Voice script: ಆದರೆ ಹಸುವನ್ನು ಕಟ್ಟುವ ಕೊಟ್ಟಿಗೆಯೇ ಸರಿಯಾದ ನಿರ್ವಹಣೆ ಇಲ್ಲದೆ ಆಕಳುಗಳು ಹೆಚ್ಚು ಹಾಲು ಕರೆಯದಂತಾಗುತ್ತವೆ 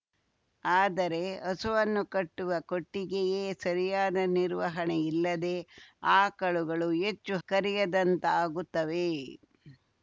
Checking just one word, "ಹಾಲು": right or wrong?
wrong